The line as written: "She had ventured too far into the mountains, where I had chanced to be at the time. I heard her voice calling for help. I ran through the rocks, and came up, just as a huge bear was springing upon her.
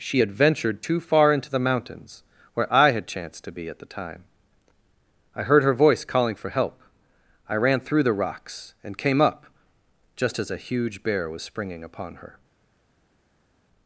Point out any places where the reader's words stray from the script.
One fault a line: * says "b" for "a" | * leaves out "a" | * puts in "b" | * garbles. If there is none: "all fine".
all fine